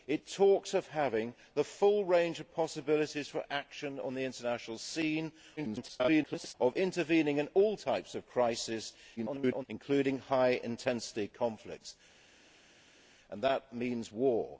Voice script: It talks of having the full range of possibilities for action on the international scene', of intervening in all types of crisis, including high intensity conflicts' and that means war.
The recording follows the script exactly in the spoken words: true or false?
false